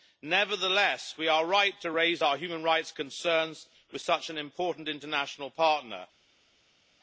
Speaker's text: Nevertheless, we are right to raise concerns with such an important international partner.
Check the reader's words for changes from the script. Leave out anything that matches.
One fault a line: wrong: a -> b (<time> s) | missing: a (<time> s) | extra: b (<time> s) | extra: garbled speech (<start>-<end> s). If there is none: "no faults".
extra: our human rights (2.2 s)